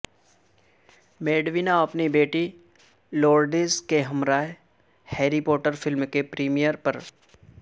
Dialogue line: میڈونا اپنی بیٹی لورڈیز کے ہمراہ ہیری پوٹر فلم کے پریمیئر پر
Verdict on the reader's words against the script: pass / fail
pass